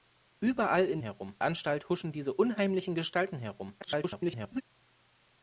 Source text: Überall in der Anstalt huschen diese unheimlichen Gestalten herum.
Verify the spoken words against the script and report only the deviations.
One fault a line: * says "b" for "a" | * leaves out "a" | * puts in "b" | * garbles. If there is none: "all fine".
* says "herum" for "der"
* garbles